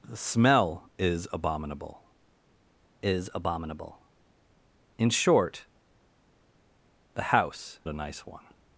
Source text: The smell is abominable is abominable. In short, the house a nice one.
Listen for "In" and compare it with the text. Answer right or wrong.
right